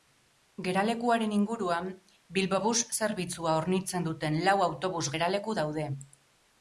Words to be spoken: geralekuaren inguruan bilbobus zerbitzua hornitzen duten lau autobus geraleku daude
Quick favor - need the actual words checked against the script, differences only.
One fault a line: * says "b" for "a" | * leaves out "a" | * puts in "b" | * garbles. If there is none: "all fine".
all fine